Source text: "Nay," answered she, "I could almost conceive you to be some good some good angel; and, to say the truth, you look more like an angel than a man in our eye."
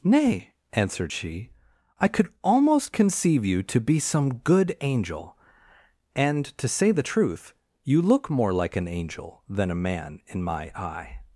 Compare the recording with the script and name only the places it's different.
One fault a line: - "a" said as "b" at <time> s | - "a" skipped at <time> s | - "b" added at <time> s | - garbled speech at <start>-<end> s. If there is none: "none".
- "some good" skipped at 4.8 s
- "our" said as "my" at 10.4 s